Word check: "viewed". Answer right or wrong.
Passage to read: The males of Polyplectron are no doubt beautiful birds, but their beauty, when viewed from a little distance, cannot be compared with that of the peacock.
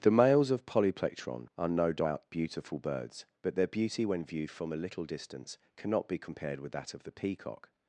right